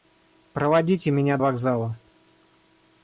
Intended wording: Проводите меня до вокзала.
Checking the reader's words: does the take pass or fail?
fail